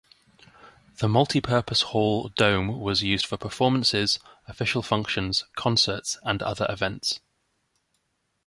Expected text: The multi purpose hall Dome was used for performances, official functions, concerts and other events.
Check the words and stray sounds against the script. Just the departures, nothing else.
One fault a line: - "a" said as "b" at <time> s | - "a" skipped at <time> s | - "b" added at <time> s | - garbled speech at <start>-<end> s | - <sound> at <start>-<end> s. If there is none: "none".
none